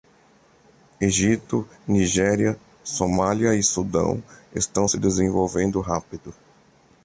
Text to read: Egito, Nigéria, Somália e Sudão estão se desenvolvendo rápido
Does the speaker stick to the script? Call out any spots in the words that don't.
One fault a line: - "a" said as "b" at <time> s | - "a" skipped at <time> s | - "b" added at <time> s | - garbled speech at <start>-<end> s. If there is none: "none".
none